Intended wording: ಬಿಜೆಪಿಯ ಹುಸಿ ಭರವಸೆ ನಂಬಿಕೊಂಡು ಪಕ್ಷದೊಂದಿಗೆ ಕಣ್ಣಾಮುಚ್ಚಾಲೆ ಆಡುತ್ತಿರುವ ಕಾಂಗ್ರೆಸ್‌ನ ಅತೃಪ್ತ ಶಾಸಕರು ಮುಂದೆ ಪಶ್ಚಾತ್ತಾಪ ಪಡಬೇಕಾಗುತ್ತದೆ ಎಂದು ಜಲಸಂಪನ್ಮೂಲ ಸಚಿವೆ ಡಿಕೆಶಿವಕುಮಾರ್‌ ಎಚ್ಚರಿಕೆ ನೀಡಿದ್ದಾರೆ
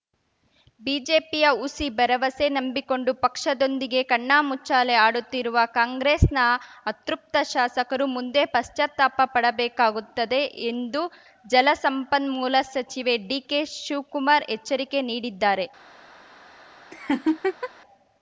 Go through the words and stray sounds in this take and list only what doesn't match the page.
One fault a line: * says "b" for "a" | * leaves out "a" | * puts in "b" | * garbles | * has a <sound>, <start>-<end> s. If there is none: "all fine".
* has a laugh, 16.9-17.7 s